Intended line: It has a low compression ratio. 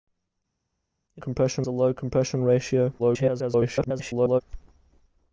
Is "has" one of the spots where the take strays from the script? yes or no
yes